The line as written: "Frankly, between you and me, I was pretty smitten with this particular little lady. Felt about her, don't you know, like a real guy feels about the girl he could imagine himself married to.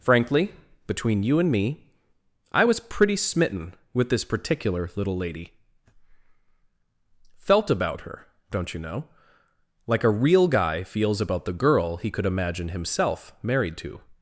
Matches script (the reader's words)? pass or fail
pass